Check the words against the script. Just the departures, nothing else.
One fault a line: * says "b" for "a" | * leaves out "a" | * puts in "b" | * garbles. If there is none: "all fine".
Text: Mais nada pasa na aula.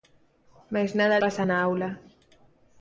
all fine